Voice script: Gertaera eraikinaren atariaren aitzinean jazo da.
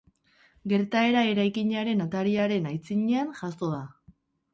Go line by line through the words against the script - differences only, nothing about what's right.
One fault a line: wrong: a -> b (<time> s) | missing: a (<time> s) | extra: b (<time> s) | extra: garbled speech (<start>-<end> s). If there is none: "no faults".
no faults